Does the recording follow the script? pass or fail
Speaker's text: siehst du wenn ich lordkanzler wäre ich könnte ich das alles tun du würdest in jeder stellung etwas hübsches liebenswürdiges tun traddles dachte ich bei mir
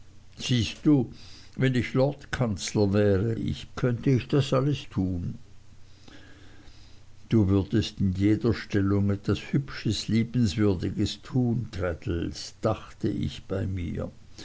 pass